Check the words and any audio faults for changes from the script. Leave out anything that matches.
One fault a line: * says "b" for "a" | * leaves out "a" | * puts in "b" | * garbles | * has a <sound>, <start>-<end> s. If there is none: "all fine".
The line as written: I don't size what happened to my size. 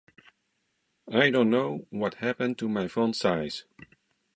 * says "know" for "size"
* puts in "font"